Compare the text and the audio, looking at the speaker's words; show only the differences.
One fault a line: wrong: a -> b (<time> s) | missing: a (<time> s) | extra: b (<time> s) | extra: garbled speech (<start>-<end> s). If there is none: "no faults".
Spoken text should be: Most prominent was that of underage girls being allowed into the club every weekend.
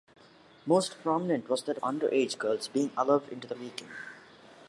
missing: of (1.8 s)
missing: club every (3.5 s)